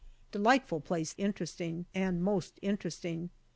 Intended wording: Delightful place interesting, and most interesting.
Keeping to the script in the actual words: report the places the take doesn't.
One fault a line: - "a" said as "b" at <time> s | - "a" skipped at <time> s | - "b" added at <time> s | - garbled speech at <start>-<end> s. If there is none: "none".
none